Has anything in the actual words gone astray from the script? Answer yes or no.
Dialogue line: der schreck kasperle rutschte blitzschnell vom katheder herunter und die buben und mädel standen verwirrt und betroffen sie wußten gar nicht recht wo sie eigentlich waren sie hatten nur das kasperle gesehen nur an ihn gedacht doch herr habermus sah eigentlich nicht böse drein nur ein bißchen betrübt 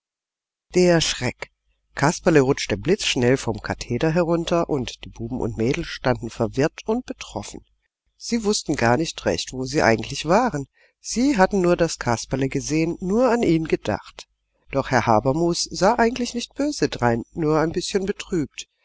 no